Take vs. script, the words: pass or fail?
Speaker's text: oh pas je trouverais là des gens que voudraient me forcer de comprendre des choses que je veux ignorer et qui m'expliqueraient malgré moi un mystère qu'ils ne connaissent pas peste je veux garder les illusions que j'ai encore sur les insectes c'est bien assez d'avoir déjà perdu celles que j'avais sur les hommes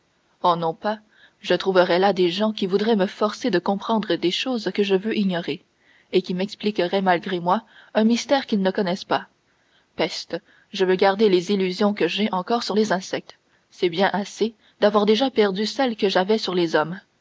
fail